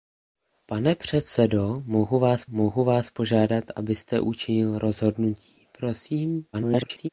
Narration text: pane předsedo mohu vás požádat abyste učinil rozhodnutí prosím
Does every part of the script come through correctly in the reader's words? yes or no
no